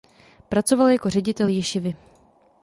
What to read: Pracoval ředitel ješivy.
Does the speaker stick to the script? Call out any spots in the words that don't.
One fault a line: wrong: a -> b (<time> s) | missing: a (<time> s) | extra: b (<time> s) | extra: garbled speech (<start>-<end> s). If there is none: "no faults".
extra: jako (0.9 s)